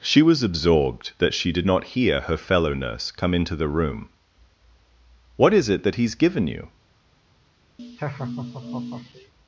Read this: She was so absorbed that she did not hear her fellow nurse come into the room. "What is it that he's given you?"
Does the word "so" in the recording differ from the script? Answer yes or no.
yes